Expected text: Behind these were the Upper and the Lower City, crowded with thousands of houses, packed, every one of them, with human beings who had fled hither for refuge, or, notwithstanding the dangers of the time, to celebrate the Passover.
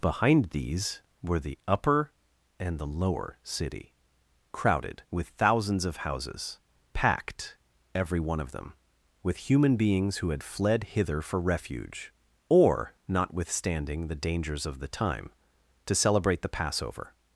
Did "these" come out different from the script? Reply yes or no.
no